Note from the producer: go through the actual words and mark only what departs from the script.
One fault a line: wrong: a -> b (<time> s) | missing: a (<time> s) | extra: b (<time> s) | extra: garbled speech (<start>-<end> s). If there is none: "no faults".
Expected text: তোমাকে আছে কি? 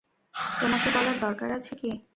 extra: বলার দরকার (0.9 s)